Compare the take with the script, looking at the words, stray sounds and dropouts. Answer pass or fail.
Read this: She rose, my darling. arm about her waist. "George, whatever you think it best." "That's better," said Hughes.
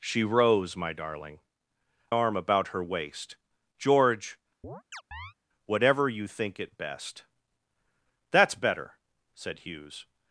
fail